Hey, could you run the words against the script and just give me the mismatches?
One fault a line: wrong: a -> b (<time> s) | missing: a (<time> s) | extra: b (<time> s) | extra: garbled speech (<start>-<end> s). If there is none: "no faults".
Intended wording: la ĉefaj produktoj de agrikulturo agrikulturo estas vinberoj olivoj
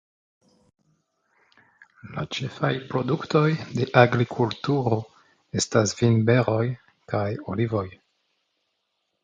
missing: agrikulturo (5.0 s)
extra: kaj (7.2 s)